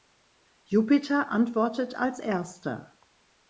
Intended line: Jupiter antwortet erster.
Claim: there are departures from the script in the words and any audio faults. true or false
true